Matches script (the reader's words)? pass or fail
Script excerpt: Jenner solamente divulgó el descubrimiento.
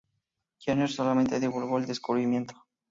pass